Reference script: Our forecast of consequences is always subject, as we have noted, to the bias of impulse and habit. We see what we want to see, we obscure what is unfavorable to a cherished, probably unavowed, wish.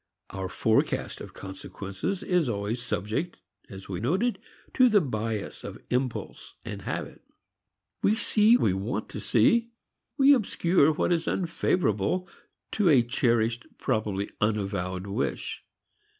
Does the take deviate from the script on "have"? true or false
true